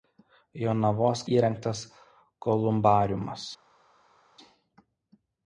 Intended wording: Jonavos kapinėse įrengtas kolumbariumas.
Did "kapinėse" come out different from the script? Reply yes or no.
yes